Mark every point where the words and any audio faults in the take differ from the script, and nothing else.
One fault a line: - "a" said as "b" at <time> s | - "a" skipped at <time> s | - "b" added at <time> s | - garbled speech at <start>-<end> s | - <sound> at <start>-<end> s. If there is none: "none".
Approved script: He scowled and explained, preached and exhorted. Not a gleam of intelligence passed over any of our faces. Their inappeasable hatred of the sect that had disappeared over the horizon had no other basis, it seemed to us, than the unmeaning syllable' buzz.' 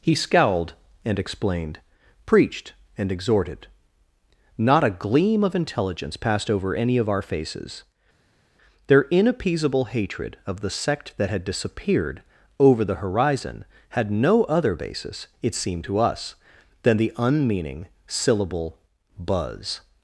none